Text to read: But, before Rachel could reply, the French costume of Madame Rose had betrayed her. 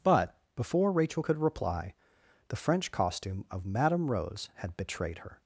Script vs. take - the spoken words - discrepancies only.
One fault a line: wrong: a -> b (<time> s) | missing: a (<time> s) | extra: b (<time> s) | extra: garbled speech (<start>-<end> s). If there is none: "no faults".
no faults